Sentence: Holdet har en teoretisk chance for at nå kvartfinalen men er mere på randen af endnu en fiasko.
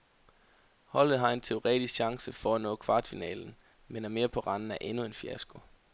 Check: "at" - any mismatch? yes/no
no